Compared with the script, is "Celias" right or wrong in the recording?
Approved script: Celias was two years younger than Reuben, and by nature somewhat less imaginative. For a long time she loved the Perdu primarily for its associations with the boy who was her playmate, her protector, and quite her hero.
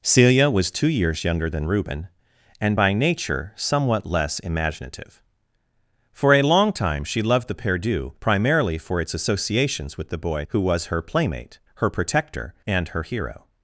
wrong